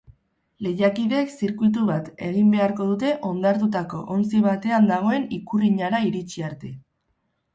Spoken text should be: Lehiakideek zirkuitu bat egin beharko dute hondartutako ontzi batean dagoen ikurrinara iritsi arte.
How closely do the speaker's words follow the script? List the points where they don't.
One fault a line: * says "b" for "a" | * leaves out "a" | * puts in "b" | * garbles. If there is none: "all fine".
all fine